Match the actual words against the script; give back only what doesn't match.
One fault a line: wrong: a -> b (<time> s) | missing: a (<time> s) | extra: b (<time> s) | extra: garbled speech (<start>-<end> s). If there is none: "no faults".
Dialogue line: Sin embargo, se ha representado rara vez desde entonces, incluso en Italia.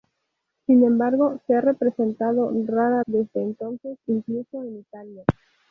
missing: vez (3.0 s)